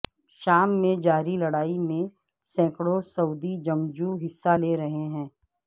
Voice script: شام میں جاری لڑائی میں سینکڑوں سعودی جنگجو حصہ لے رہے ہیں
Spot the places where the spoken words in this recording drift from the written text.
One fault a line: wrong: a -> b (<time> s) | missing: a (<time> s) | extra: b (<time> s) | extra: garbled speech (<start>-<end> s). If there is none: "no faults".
no faults